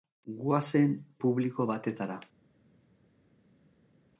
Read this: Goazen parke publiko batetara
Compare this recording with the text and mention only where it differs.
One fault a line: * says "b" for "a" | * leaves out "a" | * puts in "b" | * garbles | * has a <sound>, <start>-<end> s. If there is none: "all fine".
* leaves out "parke"